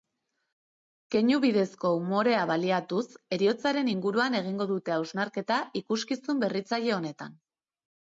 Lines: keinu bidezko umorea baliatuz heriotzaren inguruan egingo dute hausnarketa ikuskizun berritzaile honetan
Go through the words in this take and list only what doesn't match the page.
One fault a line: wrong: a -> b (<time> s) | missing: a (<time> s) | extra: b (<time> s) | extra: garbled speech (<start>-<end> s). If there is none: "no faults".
no faults